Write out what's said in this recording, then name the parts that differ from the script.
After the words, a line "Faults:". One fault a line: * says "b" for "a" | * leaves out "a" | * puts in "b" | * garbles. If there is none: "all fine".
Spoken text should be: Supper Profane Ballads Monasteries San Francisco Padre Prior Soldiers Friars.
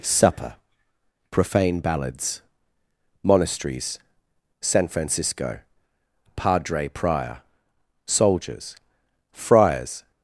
Supper Profane Ballads Monasteries San Francisco Padre Prior Soldiers Friars.
Faults:
all fine